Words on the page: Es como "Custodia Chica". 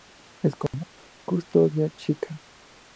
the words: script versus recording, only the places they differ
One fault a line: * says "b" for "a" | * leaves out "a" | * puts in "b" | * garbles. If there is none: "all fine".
all fine